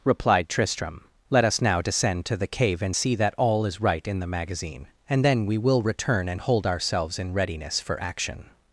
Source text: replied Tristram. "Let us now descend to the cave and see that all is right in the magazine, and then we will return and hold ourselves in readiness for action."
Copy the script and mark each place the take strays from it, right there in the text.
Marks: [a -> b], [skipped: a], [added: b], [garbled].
replied Tristram. "Let us now descend to the cave and see that all is right in the magazine, and then we will return and hold ourselves in readiness for action."